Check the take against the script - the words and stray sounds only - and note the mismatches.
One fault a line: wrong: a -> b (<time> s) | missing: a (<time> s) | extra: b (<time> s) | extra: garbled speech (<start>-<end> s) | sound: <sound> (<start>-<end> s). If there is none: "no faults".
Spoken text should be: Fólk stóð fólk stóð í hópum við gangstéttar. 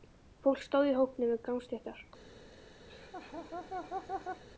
missing: fólk stóð (0.9 s)
sound: laugh (2.9-4.4 s)